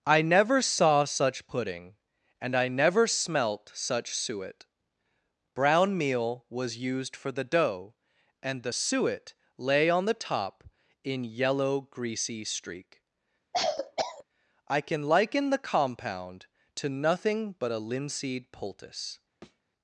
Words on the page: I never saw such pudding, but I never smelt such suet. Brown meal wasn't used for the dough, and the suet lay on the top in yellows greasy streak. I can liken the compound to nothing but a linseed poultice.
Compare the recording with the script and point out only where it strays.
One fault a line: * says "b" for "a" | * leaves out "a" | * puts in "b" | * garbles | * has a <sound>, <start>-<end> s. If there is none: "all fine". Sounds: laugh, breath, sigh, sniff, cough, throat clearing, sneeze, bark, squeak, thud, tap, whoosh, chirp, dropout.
* says "and" for "but"
* says "was" for "wasn't"
* says "yellow" for "yellows"
* has a cough, 13.5-14.2 s
* has a thud, 19.4-19.6 s